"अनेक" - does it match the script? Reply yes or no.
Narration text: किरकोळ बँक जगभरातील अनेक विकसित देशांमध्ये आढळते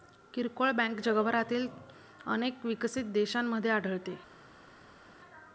yes